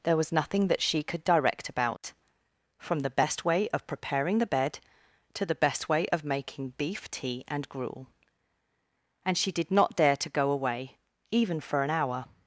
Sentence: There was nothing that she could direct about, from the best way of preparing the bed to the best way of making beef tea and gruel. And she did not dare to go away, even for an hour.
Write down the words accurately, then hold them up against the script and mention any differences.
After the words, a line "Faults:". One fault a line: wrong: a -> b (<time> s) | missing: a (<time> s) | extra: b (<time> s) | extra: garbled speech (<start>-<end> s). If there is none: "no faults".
There was nothing that she could direct about, from the best way of preparing the bed to the best way of making beef tea and gruel. And she did not dare to go away, even for an hour.
Faults:
no faults